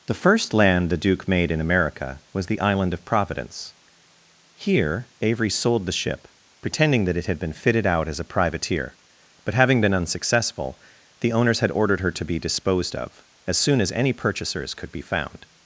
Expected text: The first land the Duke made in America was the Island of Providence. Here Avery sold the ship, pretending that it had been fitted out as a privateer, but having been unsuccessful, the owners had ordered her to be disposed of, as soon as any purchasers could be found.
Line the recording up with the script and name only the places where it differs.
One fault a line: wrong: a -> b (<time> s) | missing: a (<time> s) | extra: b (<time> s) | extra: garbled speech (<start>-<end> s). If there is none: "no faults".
no faults